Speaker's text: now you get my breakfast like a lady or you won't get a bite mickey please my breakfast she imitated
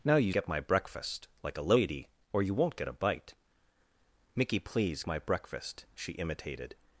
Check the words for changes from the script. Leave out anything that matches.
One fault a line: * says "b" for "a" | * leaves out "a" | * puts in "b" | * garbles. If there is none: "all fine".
all fine